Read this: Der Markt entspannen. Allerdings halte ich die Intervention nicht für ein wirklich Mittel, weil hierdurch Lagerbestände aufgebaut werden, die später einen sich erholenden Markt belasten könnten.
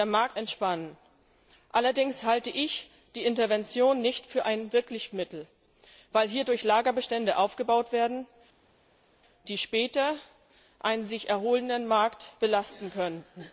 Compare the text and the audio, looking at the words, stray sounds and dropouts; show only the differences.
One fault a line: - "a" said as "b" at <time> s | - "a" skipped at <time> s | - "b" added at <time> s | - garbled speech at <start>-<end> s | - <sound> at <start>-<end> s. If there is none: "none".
none